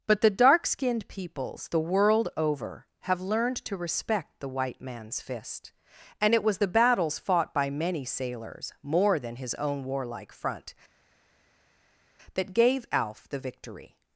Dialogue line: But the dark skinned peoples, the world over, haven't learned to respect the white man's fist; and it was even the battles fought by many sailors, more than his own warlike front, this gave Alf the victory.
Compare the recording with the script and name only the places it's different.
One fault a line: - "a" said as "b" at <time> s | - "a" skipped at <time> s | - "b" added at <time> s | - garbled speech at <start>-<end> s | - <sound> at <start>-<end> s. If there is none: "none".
- "haven't" said as "have" at 3.0 s
- "even" skipped at 6.6 s
- "this" said as "that" at 12.3 s